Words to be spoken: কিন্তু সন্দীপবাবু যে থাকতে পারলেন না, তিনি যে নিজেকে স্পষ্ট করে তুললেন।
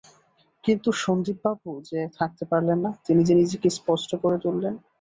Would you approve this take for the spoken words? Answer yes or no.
yes